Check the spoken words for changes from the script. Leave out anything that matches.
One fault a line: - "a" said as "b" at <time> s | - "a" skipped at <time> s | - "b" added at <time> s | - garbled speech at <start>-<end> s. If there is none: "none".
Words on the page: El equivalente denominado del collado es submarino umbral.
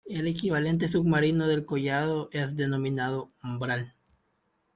- "denominado" said as "submarino" at 0.9 s
- "submarino" said as "denominado" at 2.5 s